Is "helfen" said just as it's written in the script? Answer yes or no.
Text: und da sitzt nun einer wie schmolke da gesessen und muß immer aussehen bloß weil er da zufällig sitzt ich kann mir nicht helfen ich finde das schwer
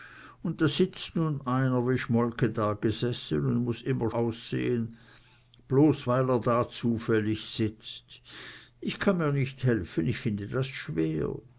yes